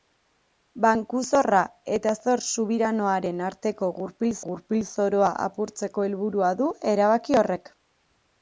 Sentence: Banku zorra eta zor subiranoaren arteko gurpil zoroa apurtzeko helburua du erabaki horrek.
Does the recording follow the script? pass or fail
fail